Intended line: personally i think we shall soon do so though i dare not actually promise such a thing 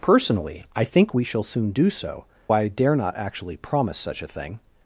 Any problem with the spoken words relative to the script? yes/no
yes